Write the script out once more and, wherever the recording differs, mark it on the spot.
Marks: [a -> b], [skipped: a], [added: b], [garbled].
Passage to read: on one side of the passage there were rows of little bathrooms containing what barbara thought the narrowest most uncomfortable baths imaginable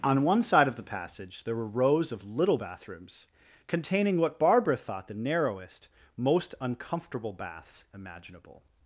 on one side of the passage there were rows of little bathrooms containing what barbara thought the narrowest most uncomfortable baths imaginable